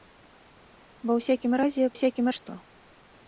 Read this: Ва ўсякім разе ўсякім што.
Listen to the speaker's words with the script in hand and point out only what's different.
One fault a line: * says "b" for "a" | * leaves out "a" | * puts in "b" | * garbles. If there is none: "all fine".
all fine